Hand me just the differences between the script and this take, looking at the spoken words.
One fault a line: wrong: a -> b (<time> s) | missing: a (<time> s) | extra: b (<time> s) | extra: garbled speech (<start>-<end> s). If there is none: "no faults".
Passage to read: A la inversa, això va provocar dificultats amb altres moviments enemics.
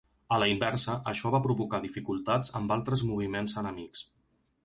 no faults